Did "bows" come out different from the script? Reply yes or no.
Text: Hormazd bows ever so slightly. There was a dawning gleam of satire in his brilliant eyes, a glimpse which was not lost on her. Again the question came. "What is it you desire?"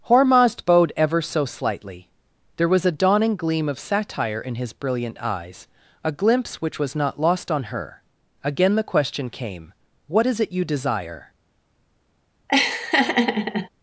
yes